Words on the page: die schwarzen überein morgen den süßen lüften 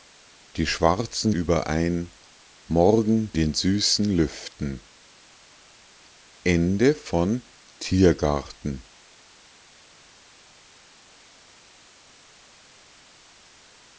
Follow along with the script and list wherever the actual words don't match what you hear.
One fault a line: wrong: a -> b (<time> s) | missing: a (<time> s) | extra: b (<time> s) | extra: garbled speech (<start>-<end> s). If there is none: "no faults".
no faults